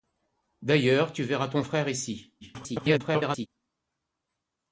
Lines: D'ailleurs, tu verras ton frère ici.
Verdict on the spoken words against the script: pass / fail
fail